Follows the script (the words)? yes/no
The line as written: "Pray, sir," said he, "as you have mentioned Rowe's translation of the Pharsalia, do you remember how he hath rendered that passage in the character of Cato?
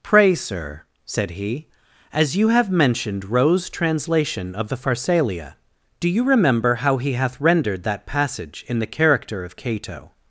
yes